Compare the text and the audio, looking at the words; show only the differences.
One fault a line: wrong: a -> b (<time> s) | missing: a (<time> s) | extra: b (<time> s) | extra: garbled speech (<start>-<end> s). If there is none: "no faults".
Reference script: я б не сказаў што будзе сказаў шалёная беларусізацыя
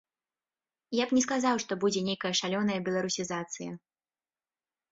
wrong: сказаў -> нейкая (2.1 s)